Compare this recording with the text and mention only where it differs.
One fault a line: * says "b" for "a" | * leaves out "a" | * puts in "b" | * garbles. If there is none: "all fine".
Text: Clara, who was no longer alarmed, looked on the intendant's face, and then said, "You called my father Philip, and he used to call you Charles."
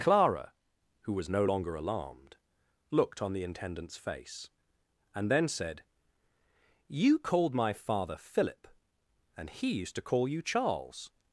all fine